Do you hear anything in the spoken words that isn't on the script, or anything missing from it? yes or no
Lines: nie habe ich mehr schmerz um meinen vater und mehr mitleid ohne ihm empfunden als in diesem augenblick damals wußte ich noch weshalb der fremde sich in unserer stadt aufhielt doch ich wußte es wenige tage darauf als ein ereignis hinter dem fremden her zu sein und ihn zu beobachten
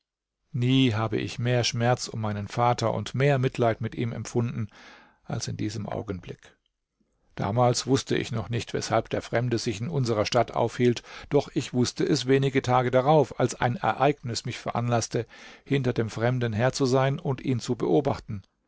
yes